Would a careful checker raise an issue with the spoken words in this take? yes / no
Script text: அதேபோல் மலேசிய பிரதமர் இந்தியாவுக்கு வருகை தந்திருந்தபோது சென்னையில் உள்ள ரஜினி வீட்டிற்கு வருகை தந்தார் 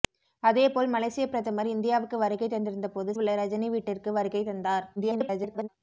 yes